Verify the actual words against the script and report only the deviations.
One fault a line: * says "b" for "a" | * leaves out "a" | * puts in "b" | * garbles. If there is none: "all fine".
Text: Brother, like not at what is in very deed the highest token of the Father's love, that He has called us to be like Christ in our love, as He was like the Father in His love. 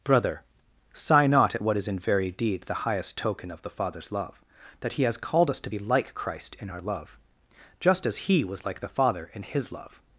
* says "sigh" for "like"
* puts in "just"